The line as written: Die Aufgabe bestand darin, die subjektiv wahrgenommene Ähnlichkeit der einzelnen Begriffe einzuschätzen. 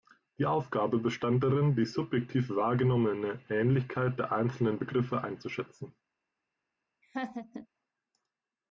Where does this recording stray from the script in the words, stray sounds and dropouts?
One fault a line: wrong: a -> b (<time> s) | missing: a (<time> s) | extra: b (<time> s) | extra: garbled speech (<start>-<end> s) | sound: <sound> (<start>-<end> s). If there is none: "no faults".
sound: laugh (7.0-7.7 s)